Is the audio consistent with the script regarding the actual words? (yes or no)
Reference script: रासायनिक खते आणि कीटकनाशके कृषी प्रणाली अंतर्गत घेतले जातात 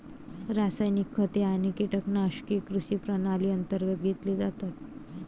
yes